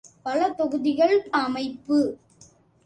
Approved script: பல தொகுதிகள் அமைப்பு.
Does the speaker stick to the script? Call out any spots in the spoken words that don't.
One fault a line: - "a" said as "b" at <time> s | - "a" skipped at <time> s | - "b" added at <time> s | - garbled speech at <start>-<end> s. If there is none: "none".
none